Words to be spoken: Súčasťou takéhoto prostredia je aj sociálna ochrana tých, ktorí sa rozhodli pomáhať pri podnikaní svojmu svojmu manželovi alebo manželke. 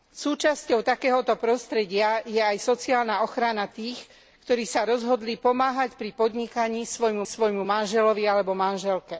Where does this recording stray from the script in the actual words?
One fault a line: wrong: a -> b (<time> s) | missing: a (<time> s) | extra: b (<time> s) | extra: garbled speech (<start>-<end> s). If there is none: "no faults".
no faults